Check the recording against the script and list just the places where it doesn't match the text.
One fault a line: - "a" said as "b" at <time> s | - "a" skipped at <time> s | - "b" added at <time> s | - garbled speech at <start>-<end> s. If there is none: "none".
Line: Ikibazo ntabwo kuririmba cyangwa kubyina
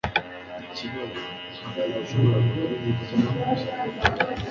- "nashoboraga" added at 1.9 s